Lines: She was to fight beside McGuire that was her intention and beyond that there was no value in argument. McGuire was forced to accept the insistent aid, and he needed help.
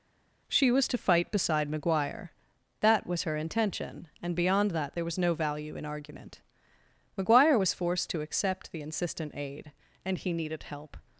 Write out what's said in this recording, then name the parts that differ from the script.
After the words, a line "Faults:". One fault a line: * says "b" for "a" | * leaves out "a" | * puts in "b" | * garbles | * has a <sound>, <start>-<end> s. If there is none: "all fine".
She was to fight beside McGuire that was her intention and beyond that there was no value in argument. McGuire was forced to accept the insistent aid, and he needed help.
Faults:
all fine